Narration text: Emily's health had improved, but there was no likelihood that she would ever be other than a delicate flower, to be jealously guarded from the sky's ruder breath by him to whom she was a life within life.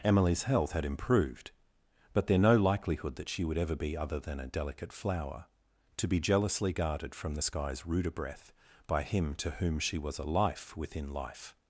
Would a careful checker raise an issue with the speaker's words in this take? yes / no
yes